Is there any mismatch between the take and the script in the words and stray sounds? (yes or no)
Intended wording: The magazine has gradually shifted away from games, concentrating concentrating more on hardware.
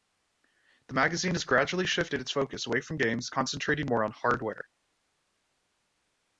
yes